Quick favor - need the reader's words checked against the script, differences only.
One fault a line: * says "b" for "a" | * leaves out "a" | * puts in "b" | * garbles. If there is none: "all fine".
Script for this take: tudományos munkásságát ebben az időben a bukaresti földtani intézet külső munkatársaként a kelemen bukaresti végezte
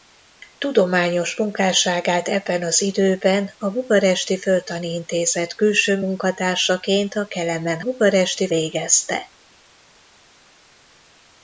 all fine